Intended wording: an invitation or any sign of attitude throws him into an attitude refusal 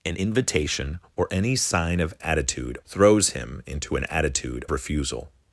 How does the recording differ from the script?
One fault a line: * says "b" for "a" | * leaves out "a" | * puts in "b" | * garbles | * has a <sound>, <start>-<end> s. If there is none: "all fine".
all fine